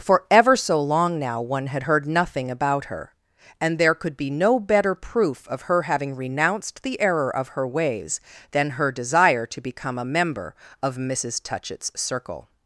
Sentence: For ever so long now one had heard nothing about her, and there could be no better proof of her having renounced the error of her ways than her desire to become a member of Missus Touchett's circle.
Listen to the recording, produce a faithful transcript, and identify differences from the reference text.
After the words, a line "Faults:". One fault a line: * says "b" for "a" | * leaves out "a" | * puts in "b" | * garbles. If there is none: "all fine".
For ever so long now one had heard nothing about her, and there could be no better proof of her having renounced the error of her ways than her desire to become a member of Missus Touchett's circle.
Faults:
all fine